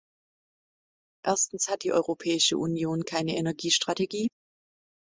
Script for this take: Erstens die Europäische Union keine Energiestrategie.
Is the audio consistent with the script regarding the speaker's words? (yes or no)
no